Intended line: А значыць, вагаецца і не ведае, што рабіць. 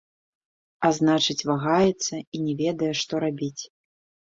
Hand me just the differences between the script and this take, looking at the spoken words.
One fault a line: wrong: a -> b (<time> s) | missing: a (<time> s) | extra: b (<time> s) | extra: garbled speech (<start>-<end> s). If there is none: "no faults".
no faults